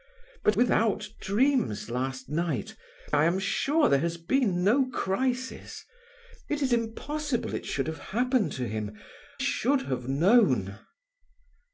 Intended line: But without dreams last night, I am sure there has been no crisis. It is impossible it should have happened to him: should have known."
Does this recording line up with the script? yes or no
yes